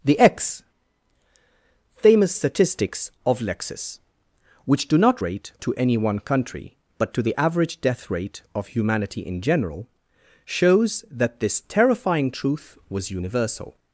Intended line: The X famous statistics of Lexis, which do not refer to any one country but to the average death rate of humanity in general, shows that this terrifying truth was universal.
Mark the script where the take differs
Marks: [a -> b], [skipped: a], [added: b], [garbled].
The X famous statistics of Lexis, which do not [refer -> rate] to any one country but to the average death rate of humanity in general, shows that this terrifying truth was universal.